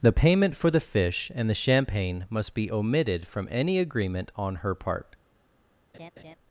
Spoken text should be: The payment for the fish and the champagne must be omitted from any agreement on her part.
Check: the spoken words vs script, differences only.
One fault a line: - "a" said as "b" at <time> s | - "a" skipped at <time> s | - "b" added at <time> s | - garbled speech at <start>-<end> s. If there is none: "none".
none